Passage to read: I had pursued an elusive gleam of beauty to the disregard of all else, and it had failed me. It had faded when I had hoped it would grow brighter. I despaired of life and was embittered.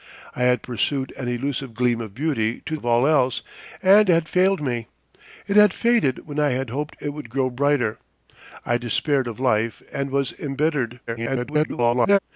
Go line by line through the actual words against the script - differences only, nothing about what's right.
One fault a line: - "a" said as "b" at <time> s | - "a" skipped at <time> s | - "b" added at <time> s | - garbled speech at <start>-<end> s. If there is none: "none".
- "the disregard" skipped at 2.8 s
- "it" skipped at 4.1 s
- garbled speech at 11.1-12.2 s